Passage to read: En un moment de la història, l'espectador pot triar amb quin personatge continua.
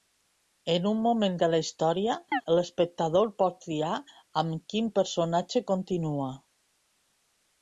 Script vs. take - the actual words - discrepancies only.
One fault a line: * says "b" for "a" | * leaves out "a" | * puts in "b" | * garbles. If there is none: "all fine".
all fine